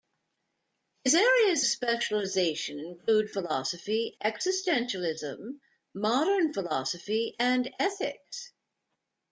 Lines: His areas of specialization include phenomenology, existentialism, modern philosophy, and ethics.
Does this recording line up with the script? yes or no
no